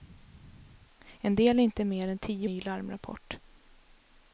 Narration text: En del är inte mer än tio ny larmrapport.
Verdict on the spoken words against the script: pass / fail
pass